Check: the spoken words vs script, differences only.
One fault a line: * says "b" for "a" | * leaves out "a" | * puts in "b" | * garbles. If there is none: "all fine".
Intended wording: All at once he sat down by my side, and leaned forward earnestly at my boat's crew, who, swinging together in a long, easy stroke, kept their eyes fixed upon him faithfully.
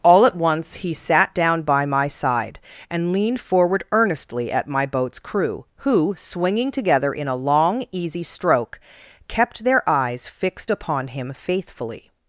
all fine